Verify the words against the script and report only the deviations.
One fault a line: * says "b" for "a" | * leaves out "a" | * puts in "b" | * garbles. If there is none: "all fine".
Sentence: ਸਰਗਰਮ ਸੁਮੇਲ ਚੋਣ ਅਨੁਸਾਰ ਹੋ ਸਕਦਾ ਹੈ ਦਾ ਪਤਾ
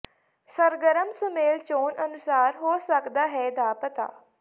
all fine